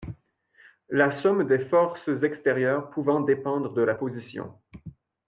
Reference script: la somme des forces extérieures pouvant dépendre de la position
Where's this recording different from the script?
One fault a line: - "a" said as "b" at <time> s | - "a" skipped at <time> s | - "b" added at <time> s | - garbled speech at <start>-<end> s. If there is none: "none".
none